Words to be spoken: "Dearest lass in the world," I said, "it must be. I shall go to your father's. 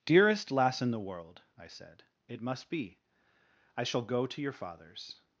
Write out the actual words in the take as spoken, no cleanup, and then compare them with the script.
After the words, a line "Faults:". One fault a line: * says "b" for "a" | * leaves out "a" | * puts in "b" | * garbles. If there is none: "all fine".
"Dearest lass in the world," I said, "it must be. I shall go to your father's.
Faults:
all fine